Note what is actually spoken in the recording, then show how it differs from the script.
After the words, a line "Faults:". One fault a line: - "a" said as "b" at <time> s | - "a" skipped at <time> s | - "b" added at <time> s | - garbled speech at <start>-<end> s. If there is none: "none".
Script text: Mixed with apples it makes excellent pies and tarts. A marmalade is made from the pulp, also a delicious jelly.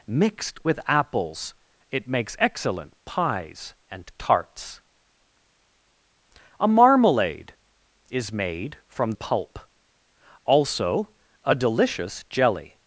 Mixed with apples it makes excellent pies and tarts. A marmalade is made from pulp, also a delicious jelly.
Faults:
- "the" skipped at 9.1 s